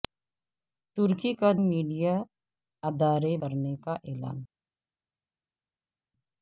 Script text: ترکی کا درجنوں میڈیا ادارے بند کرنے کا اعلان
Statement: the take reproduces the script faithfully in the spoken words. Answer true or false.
false